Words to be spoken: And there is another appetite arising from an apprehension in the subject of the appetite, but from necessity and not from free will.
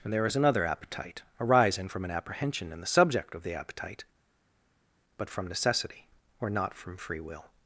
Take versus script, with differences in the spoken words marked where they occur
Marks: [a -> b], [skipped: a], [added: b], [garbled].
And there is another appetite arising from an apprehension in the subject of the appetite, but from necessity [and -> or] not from free will.